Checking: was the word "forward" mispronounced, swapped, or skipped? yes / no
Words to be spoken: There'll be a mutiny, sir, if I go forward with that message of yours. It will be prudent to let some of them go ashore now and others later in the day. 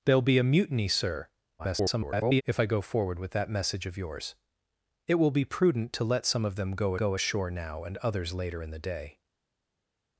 no